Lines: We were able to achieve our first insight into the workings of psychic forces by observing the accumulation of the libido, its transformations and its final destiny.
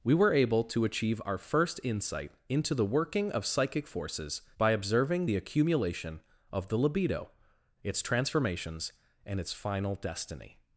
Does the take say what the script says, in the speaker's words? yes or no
no